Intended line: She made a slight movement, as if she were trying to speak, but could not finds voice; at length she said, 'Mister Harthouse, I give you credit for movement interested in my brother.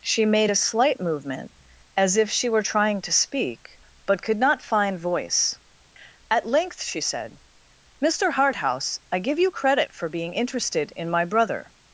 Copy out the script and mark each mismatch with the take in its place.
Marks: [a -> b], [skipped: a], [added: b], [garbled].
She made a slight movement, as if she were trying to speak, but could not [finds -> find] voice; at length she said, 'Mister Harthouse, I give you credit for [movement -> being] interested in my brother.